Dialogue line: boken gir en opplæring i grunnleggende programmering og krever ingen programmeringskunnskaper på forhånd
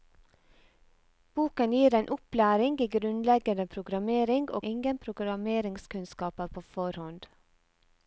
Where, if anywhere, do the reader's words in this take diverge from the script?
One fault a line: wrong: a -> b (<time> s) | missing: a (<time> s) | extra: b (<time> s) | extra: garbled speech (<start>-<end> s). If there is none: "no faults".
missing: krever (4.6 s)